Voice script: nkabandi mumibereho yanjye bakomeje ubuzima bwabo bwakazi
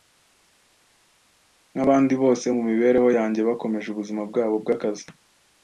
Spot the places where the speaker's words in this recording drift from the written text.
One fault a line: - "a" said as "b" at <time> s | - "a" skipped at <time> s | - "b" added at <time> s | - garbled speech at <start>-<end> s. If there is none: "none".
- "bose" added at 2.2 s